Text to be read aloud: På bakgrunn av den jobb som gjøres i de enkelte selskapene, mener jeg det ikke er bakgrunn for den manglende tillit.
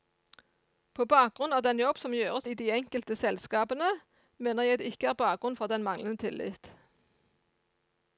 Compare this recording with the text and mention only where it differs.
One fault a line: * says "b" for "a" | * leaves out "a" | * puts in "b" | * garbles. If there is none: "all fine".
all fine